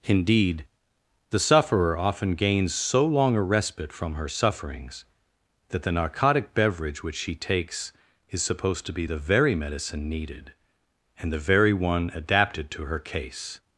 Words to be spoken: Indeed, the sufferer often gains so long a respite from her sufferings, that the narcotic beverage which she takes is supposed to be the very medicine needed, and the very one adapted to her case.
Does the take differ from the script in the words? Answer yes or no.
no